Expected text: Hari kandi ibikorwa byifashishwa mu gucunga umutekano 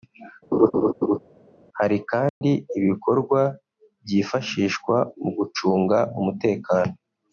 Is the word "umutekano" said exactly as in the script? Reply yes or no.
yes